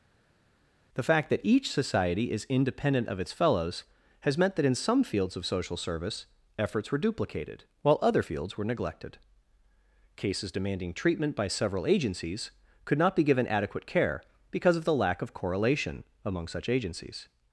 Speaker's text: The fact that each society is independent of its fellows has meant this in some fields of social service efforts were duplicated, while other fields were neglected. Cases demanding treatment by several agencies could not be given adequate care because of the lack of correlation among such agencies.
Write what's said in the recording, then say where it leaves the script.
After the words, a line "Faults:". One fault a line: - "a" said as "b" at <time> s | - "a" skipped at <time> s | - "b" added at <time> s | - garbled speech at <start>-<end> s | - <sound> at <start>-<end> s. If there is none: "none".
The fact that each society is independent of its fellows has meant that in some fields of social service efforts were duplicated, while other fields were neglected. Cases demanding treatment by several agencies could not be given adequate care because of the lack of correlation among such agencies.
Faults:
- "this" said as "that" at 4.6 s